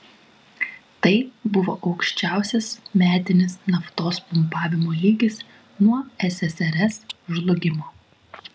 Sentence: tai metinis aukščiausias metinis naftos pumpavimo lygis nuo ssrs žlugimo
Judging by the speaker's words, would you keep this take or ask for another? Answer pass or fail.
fail